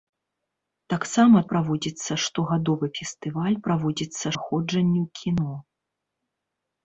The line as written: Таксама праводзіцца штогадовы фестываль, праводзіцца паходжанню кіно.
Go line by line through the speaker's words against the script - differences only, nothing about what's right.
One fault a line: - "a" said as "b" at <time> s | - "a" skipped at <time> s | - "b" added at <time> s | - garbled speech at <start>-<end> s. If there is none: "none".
none